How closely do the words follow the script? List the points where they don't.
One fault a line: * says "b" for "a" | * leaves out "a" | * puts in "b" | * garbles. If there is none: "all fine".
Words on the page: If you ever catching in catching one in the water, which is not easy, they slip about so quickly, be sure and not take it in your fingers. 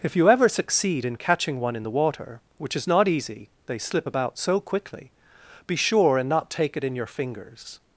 * says "succeed" for "catching"